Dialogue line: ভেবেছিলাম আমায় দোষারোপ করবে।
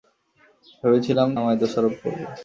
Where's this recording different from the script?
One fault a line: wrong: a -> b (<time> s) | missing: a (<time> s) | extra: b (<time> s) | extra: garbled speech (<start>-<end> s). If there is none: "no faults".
no faults